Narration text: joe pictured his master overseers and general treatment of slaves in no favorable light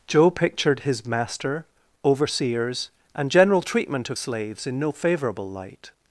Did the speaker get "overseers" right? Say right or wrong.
right